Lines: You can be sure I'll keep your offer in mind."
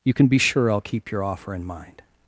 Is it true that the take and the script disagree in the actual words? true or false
false